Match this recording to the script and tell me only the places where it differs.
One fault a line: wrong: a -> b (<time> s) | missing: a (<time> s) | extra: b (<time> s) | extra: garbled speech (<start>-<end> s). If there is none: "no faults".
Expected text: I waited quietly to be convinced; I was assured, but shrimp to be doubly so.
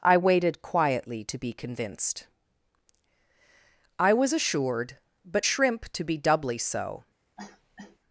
no faults